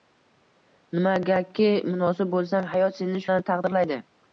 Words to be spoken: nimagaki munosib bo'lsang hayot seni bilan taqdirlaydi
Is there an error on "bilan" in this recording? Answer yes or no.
no